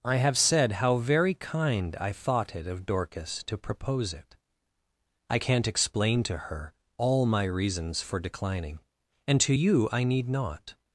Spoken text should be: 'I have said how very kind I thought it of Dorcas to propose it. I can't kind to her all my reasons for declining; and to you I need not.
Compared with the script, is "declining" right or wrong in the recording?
right